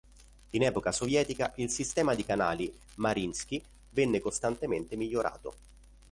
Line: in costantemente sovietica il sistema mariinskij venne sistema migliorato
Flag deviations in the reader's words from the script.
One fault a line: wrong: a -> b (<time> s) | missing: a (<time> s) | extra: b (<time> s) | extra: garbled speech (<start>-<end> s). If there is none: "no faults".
wrong: costantemente -> epoca (0.6 s)
extra: di canali (2.1 s)
wrong: sistema -> costantemente (4.2 s)